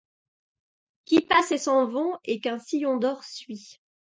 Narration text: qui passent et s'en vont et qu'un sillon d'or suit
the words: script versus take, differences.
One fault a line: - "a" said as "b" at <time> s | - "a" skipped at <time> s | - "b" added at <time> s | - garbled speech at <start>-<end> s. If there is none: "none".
none